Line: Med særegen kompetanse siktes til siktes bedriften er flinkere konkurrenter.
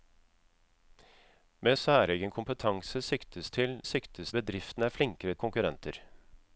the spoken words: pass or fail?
pass